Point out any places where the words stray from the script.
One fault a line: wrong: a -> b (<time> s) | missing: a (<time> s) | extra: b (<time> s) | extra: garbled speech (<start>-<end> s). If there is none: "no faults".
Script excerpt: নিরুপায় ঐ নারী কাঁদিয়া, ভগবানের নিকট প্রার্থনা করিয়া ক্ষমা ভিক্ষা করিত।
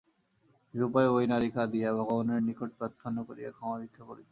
no faults